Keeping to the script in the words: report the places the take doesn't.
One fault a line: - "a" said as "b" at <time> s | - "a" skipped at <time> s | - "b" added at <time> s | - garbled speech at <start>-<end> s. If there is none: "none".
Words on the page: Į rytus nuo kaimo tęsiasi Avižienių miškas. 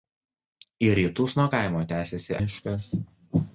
- "Avižienių" skipped at 2.4 s